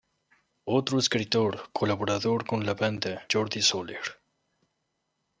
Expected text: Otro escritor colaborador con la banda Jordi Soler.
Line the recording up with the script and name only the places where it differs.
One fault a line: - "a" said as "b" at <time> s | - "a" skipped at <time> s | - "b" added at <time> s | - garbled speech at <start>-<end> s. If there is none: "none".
none